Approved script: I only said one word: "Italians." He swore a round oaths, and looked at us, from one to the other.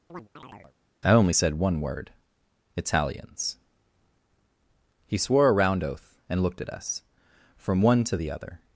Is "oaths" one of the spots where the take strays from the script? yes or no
yes